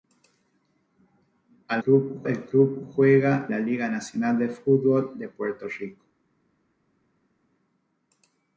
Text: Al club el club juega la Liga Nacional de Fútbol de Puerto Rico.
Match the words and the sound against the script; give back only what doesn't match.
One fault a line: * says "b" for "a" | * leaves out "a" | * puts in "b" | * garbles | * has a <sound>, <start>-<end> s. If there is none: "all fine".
all fine